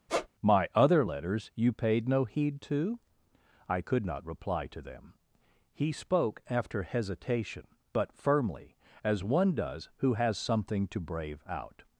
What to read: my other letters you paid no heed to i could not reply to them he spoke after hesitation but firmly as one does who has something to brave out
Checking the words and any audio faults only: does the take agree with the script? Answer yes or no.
no